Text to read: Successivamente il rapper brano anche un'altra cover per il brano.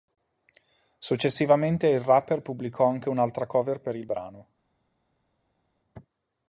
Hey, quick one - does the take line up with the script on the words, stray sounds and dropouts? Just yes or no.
no